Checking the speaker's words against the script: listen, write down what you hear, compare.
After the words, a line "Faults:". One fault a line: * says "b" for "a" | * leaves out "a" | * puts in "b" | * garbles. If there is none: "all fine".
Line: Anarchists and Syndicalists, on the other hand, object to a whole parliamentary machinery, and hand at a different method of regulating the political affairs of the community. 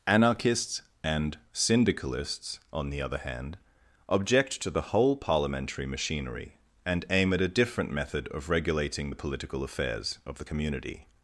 Anarchists and Syndicalists, on the other hand, object to the whole parliamentary machinery, and aim at a different method of regulating the political affairs of the community.
Faults:
* says "the" for "a"
* says "aim" for "hand"